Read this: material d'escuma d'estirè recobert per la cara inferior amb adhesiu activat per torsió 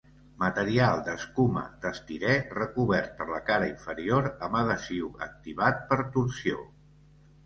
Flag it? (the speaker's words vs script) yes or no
no